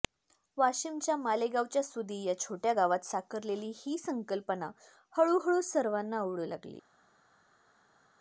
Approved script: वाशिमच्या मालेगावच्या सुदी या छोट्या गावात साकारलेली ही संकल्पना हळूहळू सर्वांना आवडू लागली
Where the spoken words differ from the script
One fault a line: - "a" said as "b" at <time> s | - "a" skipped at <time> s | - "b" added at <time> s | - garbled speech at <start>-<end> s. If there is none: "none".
none